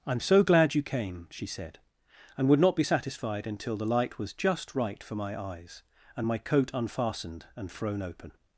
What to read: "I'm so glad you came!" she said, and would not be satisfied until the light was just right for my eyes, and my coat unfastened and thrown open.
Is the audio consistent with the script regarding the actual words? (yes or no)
yes